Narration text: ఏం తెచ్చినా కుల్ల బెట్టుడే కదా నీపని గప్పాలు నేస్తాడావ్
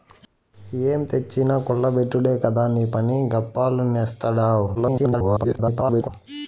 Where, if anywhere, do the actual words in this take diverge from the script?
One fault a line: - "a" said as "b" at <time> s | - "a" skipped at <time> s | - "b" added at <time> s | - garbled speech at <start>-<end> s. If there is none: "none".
- garbled speech at 4.7-6.1 s